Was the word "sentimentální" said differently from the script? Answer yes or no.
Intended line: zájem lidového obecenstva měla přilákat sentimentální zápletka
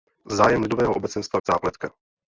yes